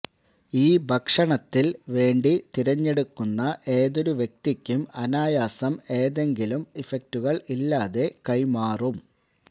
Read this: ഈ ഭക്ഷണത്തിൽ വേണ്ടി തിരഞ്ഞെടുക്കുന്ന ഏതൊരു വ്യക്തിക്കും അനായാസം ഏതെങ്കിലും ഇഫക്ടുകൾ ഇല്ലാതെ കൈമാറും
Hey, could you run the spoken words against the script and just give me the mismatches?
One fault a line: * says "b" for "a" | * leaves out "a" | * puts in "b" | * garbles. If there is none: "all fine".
all fine